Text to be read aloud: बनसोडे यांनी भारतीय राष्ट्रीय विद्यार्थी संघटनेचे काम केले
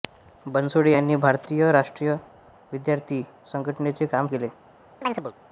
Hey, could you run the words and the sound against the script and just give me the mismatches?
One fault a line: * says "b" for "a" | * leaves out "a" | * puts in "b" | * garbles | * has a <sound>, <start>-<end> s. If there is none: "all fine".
* has a chirp, 5.0-5.3 s